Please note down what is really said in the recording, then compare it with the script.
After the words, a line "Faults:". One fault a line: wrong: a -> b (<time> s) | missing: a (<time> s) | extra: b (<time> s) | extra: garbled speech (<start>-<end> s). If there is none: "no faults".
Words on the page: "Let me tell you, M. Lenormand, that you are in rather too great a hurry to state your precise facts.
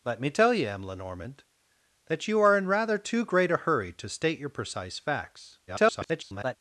"Let me tell you, M. Lenormand, that you are in rather too great a hurry to state your precise facts. [garbled]
Faults:
extra: garbled speech (5.7-6.6 s)